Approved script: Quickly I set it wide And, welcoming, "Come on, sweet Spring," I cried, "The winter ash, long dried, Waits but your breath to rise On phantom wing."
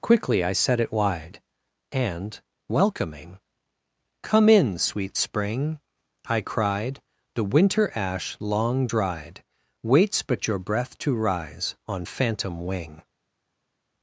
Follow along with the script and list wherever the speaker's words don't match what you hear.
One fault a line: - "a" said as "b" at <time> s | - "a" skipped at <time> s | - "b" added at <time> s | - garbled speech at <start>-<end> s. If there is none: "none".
- "on" said as "in" at 4.5 s